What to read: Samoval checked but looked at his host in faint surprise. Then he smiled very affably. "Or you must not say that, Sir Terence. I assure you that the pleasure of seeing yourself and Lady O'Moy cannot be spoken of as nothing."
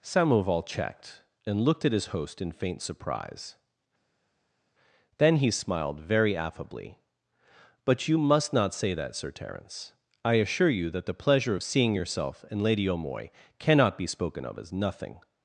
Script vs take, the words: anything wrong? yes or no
yes